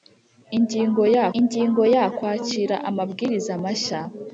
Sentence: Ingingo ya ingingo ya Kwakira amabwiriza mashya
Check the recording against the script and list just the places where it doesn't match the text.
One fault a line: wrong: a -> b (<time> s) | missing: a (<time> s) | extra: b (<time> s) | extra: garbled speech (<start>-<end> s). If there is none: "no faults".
no faults